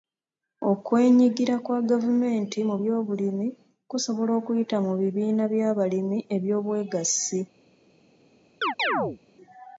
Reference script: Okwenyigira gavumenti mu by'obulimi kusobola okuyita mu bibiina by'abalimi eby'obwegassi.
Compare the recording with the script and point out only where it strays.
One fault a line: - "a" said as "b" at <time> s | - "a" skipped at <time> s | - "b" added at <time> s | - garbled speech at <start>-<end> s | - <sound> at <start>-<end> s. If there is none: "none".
- "kwa" added at 1.6 s
- chirp at 8.6-9.2 s